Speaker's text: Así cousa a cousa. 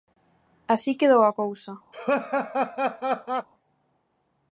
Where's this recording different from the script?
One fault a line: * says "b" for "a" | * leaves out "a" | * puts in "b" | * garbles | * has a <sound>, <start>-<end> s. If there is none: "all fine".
* says "quedou" for "cousa"
* has a laugh, 1.9-3.5 s